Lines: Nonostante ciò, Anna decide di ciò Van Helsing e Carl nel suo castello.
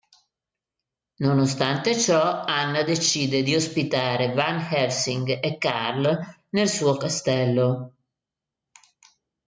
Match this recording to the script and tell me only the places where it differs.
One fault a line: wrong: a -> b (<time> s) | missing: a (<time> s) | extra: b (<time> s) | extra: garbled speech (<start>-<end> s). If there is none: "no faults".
wrong: ciò -> ospitare (3.5 s)